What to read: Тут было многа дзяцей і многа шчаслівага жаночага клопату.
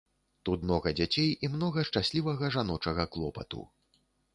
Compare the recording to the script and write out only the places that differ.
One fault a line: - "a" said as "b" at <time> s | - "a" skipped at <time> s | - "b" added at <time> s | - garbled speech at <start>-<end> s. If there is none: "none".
- "было" skipped at 0.6 s